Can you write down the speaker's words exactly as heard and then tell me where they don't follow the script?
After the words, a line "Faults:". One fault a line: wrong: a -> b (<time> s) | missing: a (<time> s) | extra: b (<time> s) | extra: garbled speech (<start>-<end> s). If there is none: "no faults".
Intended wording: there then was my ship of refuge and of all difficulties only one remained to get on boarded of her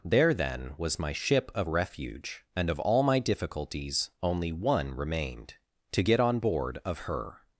there then was my ship of refuge and of all my difficulties only one remained to get on board of her
Faults:
extra: my (3.0 s)
wrong: boarded -> board (6.4 s)